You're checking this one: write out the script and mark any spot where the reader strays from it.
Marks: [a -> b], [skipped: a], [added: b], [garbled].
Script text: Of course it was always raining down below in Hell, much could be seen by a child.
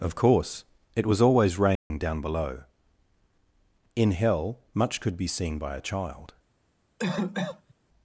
Of course it was always raining down below in Hell, much could be seen by a child.